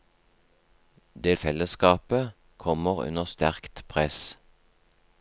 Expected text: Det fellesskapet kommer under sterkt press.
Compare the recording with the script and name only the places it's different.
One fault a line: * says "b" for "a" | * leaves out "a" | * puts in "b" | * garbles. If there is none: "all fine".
all fine